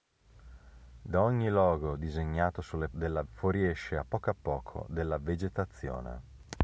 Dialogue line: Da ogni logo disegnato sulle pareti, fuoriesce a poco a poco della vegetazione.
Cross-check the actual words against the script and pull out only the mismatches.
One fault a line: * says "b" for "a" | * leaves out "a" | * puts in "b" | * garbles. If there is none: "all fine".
* says "della" for "pareti"